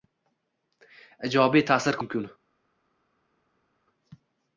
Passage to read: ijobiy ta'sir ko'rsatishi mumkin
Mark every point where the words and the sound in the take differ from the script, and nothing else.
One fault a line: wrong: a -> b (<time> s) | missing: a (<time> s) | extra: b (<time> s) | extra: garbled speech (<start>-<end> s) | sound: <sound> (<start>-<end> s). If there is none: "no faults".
missing: ko'rsatishi (2.0 s)